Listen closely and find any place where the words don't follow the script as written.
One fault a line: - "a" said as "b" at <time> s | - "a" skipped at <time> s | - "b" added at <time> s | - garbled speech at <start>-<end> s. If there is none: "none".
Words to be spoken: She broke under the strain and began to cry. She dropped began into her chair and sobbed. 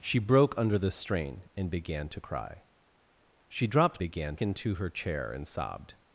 none